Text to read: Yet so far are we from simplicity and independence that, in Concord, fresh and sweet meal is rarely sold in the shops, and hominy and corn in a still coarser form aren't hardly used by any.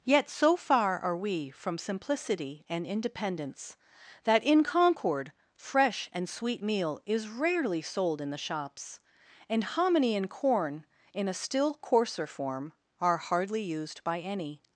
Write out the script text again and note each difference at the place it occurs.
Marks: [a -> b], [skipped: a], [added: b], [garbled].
Yet so far are we from simplicity and independence that, in Concord, fresh and sweet meal is rarely sold in the shops, and hominy and corn in a still coarser form [aren't -> are] hardly used by any.